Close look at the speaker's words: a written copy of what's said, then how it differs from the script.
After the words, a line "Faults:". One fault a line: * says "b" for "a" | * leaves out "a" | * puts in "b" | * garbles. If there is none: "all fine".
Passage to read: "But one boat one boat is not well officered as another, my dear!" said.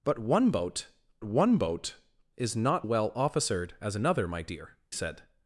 "But one boat one boat is not well officered as another, my dear!" said.
Faults:
all fine